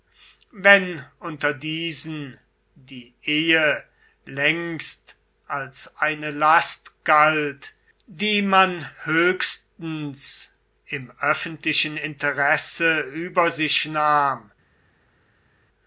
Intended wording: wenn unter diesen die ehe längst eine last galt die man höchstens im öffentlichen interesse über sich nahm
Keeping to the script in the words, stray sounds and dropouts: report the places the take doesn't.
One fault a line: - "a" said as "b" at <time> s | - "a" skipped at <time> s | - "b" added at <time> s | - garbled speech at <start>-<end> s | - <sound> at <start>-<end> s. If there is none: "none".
- "als" added at 5.5 s